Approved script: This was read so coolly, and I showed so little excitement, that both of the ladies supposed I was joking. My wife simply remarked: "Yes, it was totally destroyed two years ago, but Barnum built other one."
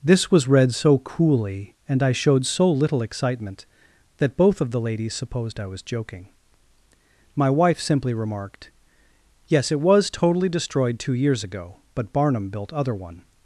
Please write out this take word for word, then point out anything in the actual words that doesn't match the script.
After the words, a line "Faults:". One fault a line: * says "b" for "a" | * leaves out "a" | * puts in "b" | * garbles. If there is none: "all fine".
This was read so coolly, and I showed so little excitement, that both of the ladies supposed I was joking. My wife simply remarked: "Yes, it was totally destroyed two years ago, but Barnum built other one."
Faults:
all fine